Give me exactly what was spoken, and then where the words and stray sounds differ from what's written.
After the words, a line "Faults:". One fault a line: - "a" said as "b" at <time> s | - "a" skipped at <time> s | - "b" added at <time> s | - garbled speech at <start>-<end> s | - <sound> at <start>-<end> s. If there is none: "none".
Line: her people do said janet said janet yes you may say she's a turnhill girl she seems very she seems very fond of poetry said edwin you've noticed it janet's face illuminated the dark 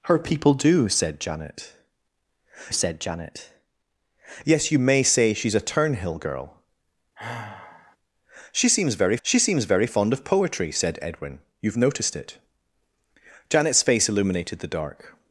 her people do said janet said janet yes you may say she's a turnhill girl she seems very she seems very fond of poetry said edwin you've noticed it janet's face illuminated the dark
Faults:
- sigh at 7.2-8.0 s